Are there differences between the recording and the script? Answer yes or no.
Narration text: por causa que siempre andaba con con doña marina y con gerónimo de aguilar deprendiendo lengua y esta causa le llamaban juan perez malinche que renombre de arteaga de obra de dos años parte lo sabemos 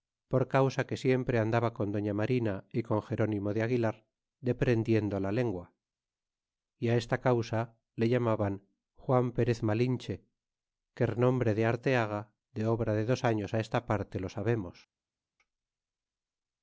yes